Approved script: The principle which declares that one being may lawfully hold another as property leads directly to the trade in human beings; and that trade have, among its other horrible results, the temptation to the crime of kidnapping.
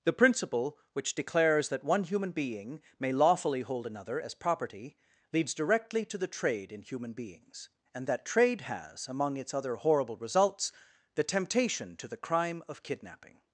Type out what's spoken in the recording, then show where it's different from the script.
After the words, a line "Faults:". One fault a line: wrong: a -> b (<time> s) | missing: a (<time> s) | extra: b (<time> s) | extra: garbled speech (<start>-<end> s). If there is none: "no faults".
The principle which declares that one human being may lawfully hold another as property leads directly to the trade in human beings; and that trade has, among its other horrible results, the temptation to the crime of kidnapping.
Faults:
extra: human (2.0 s)
wrong: have -> has (8.6 s)